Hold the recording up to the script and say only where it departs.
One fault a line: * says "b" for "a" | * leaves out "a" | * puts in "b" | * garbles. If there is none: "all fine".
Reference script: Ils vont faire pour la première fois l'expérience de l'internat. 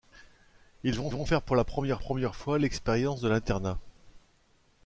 * puts in "vont"
* puts in "première"